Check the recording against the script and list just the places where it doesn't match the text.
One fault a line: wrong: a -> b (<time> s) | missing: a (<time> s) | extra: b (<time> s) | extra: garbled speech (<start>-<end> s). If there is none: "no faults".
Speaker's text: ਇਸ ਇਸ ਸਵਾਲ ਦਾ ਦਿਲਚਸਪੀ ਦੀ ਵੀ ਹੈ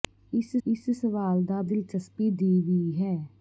no faults